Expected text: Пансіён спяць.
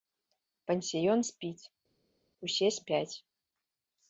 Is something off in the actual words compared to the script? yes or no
yes